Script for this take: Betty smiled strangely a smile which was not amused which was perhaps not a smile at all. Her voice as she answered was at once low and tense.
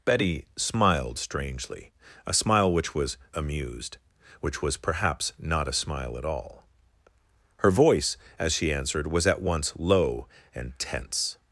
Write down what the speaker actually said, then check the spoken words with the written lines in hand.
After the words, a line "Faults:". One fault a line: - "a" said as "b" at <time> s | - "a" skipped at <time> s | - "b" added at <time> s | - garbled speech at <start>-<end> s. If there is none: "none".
Betty smiled strangely a smile which was amused which was perhaps not a smile at all. Her voice as she answered was at once low and tense.
Faults:
- "not" skipped at 3.2 s